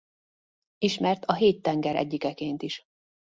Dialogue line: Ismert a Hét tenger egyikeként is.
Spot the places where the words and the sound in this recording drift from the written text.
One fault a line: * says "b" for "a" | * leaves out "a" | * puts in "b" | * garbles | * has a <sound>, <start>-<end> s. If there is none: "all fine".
all fine